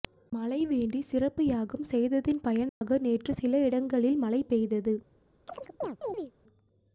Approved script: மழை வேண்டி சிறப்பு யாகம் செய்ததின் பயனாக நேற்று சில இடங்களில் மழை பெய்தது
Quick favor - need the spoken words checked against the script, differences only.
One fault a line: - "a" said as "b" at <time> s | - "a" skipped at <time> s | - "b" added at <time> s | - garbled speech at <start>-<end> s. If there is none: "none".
none